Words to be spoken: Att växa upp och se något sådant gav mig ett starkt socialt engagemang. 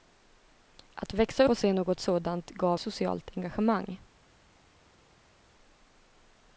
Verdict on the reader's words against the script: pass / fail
fail